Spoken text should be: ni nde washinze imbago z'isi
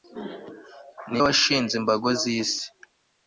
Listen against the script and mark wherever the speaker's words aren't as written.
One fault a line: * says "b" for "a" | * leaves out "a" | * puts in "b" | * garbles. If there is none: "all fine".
* leaves out "nde"